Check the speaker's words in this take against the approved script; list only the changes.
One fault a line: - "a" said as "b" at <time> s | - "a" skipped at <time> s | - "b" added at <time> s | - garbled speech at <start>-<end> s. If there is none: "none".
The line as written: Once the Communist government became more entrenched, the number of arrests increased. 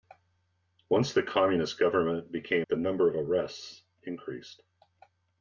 - "more entrenched" skipped at 2.7 s